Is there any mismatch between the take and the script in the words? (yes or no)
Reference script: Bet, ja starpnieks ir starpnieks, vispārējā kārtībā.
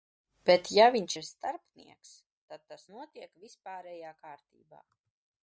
yes